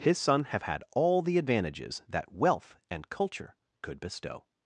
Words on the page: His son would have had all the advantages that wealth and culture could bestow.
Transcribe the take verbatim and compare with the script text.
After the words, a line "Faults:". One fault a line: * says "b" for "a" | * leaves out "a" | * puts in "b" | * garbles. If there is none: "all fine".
His son have had all the advantages that wealth and culture could bestow.
Faults:
* leaves out "would"